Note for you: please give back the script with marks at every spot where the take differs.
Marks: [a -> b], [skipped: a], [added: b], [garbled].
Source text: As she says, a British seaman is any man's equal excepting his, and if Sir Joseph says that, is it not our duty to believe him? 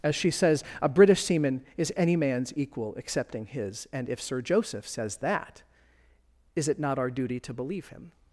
As she says, a British seaman is any man's equal excepting his, and if Sir Joseph says that, is it not our duty to believe him?